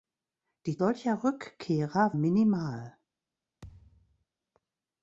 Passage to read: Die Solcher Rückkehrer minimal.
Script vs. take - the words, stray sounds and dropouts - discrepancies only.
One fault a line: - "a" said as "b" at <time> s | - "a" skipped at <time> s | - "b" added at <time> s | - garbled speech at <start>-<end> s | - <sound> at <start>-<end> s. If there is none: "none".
- thud at 3.6-4.2 s